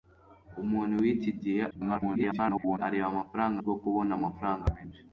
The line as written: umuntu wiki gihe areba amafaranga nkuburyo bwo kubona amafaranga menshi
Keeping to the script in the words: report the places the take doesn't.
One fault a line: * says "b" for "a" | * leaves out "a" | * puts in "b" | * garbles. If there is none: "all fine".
* garbles
* leaves out "nkuburyo"